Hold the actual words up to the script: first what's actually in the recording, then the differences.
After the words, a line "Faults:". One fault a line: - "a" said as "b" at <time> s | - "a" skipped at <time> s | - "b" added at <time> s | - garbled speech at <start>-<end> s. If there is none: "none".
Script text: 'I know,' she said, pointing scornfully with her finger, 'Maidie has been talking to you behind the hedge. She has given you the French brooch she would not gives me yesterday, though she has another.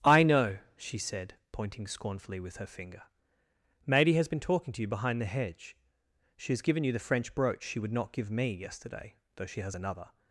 'I know,' she said, pointing scornfully with her finger, 'Maidie has been talking to you behind the hedge. She has given you the French brooch she would not give me yesterday, though she has another.
Faults:
- "gives" said as "give" at 8.1 s